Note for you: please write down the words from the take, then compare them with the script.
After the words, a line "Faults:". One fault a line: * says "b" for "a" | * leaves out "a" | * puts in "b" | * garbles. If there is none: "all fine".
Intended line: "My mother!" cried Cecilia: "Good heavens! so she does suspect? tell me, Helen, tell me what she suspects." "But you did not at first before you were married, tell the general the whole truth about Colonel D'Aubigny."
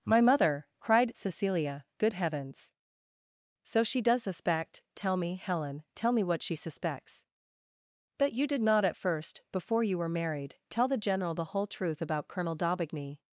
"My mother!" cried Cecilia: "Good heavens! so she does suspect? tell me, Helen, tell me what she suspects." "But you did not at first before you were married, tell the general the whole truth about Colonel D'Aubigny."
Faults:
all fine